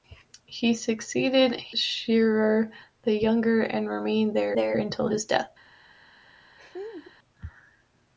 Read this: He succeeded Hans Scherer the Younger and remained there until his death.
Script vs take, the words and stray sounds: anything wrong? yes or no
yes